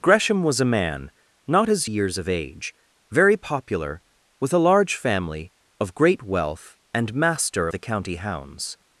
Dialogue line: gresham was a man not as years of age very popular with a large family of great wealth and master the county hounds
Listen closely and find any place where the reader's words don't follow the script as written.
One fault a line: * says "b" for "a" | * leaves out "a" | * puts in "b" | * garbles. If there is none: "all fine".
all fine